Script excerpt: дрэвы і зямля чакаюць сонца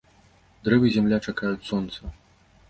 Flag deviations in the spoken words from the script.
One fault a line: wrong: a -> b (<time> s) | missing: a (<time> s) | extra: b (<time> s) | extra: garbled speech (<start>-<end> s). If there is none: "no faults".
no faults